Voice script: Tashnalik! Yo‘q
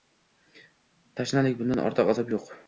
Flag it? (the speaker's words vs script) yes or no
yes